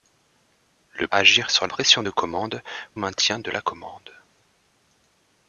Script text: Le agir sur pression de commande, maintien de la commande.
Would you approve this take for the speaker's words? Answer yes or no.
yes